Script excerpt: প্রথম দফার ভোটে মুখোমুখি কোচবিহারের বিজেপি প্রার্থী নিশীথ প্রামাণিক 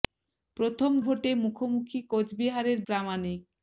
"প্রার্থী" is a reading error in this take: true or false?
true